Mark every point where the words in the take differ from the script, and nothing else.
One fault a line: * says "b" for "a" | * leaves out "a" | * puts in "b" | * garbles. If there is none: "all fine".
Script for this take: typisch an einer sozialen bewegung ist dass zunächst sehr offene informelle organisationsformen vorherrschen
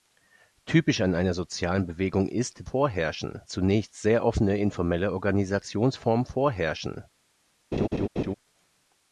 * says "vorherrschen" for "dass"